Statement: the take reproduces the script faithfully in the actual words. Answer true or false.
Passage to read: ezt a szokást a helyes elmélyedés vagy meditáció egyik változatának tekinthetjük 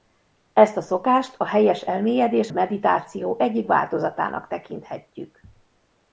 false